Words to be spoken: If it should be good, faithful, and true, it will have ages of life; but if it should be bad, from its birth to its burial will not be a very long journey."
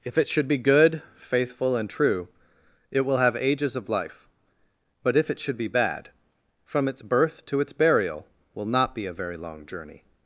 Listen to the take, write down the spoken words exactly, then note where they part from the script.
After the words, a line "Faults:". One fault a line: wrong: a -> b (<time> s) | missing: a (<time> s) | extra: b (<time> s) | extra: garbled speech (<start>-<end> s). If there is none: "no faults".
If it should be good, faithful, and true, it will have ages of life; but if it should be bad, from its birth to its burial will not be a very long journey."
Faults:
no faults